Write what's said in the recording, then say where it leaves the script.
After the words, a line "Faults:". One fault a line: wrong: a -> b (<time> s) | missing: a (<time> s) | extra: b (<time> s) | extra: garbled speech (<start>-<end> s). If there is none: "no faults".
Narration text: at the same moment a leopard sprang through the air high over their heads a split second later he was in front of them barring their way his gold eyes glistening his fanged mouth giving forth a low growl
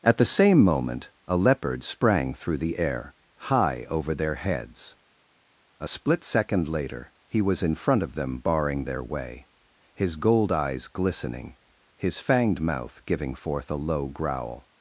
at the same moment a leopard sprang through the air high over their heads a split second later he was in front of them barring their way his gold eyes glistening his fanged mouth giving forth a low growl
Faults:
no faults